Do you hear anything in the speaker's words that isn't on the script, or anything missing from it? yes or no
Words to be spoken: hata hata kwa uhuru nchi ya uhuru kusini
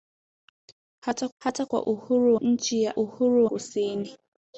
no